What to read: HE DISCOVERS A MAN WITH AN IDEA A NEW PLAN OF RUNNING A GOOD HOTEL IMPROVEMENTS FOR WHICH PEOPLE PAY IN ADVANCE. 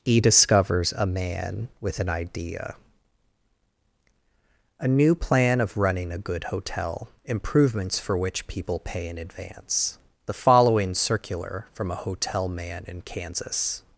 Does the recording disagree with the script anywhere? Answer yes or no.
yes